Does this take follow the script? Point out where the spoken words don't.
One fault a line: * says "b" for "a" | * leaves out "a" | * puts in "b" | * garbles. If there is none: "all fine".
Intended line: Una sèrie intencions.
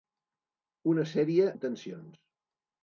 all fine